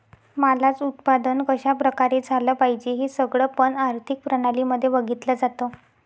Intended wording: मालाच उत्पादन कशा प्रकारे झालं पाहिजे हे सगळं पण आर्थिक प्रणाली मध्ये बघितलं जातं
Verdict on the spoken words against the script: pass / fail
pass